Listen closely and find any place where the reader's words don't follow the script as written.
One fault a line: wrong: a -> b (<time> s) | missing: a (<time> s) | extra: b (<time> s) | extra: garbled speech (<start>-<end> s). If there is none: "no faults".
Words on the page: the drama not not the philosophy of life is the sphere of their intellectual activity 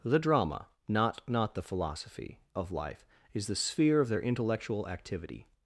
no faults